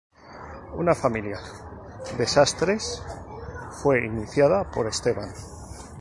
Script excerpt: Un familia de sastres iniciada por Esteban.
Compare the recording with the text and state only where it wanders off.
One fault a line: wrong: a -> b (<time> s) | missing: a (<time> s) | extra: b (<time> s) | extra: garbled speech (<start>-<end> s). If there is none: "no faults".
wrong: Un -> Una (0.8 s)
extra: fue (3.8 s)